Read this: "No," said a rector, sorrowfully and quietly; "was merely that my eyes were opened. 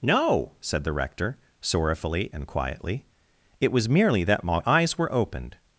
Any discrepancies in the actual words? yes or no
yes